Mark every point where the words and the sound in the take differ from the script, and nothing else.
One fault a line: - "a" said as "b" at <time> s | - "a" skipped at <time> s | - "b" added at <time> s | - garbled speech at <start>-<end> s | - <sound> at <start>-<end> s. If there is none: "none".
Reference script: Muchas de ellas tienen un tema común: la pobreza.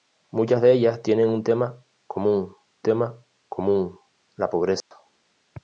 - "tema común" added at 2.8 s
- dropout at 4.8-4.9 s